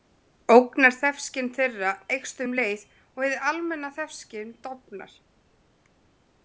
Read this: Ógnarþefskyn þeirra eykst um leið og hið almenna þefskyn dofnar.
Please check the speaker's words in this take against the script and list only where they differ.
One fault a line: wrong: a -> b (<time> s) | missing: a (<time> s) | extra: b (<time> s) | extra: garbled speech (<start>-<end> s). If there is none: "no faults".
no faults